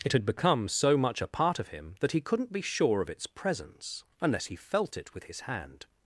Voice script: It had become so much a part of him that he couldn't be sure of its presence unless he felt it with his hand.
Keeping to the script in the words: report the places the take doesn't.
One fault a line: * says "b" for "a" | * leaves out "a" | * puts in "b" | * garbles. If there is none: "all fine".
all fine